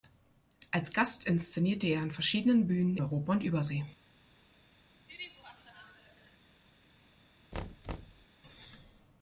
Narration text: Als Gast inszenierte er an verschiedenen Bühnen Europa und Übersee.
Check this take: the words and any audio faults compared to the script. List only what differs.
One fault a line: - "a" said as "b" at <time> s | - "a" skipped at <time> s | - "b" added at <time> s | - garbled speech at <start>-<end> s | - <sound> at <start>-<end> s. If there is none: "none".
- laugh at 5.1-6.4 s
- thud at 7.5-8.3 s